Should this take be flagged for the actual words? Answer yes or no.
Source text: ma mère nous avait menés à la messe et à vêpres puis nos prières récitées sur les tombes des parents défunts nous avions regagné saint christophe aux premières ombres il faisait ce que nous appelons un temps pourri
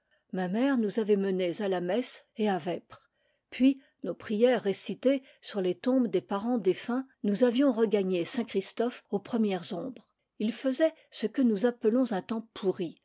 no